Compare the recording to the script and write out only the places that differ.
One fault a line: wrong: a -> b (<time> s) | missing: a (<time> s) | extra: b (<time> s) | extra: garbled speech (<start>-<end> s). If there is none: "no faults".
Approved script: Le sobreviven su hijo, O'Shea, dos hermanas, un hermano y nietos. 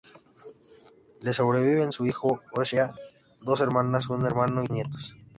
no faults